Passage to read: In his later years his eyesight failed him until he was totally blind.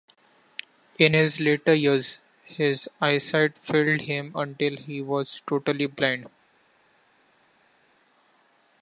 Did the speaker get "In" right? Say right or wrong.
right